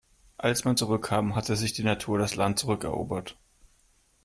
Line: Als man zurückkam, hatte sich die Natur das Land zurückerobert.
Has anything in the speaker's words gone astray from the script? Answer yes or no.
no